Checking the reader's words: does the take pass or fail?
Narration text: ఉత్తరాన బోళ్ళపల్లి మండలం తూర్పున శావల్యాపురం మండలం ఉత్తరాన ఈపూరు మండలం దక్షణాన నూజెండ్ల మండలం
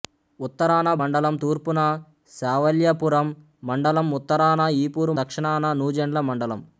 fail